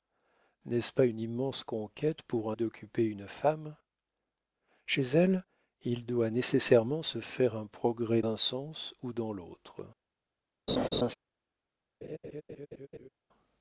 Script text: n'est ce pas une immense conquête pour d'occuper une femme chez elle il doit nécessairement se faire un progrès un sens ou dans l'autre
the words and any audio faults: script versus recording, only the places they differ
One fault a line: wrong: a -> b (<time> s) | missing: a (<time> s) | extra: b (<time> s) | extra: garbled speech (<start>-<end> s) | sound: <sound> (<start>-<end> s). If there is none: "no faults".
sound: laugh (10.7-11.1 s)
sound: laugh (12.0-13.1 s)